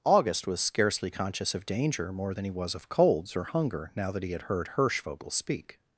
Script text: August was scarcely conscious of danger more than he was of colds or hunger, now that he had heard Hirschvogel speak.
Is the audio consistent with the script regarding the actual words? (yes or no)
yes